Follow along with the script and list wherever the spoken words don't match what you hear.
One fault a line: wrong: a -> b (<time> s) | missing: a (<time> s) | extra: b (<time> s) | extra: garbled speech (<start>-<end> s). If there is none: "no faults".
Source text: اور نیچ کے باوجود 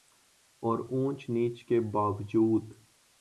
extra: اونچ (0.9 s)